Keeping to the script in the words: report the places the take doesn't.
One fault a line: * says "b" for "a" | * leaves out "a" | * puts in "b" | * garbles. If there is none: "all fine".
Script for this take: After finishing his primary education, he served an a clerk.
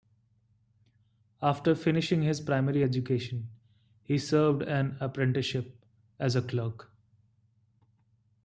* puts in "apprenticeship as"